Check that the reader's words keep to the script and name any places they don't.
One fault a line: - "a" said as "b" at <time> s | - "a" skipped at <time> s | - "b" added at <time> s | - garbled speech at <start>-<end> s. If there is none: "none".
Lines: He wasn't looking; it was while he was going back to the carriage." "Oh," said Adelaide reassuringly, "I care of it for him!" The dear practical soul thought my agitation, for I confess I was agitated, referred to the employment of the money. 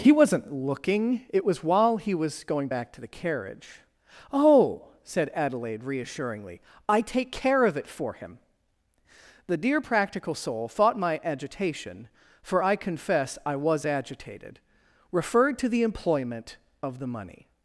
- "take" added at 7.0 s